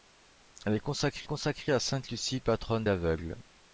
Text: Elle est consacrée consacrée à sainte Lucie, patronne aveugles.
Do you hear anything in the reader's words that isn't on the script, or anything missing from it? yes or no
no